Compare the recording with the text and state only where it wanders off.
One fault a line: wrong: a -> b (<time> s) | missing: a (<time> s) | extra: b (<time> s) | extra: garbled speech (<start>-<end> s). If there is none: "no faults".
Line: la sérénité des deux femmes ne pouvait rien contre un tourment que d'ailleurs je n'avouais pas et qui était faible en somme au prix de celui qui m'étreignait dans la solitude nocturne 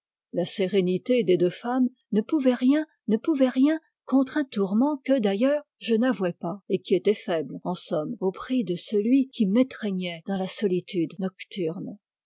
extra: ne pouvait rien (3.1 s)